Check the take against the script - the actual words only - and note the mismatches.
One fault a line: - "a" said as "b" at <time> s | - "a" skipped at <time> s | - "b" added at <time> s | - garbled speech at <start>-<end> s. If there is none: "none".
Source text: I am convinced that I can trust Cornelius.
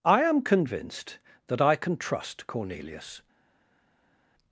none